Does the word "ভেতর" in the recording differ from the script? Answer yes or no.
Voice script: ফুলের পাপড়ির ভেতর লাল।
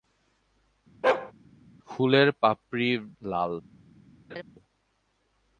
yes